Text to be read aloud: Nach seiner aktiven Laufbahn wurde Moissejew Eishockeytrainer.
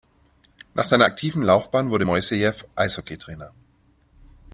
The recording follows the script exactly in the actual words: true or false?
true